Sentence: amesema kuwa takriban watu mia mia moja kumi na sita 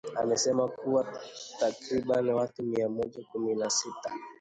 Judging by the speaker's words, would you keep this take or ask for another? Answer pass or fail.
fail